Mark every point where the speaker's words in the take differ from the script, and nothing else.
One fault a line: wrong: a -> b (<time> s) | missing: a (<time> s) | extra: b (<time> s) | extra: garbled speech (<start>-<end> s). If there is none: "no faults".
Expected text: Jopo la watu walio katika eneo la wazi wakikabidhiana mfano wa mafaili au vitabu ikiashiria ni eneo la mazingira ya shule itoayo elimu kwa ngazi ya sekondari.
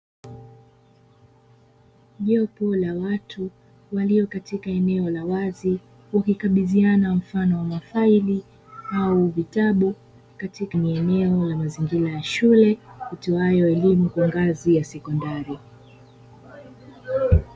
wrong: ikiashiria -> katika (10.4 s)